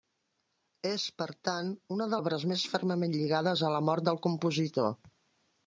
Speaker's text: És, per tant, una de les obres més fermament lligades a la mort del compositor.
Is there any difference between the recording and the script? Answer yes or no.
yes